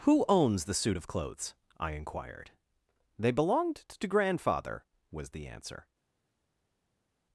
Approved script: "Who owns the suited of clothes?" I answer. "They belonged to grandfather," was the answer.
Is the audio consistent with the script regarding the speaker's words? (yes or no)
no